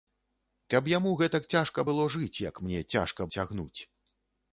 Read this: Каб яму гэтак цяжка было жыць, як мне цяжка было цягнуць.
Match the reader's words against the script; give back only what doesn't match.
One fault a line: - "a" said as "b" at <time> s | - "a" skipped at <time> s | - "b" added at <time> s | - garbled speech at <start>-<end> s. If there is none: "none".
- "было" skipped at 3.3 s